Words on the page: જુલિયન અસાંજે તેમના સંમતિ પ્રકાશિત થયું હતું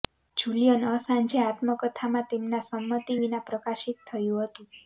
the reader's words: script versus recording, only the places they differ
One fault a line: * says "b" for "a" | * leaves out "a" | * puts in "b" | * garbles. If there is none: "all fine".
* puts in "આત્મકથામાં"
* puts in "વિના"